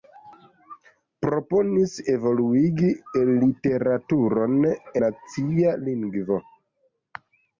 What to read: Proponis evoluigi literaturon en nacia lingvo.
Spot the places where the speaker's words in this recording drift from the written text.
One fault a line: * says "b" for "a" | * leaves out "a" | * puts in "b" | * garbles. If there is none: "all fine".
* leaves out "en"